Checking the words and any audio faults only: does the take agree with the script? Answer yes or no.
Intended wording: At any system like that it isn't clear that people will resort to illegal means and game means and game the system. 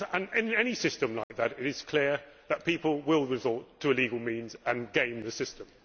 no